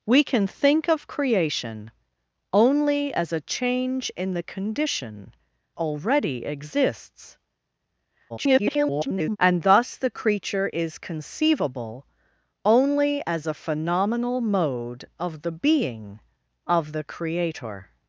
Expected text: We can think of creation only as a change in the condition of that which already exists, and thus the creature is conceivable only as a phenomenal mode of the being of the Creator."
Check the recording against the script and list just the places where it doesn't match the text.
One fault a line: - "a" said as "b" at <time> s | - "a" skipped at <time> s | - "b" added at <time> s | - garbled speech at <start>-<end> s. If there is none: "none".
- "of that which" skipped at 5.3 s
- garbled speech at 8.3-9.4 s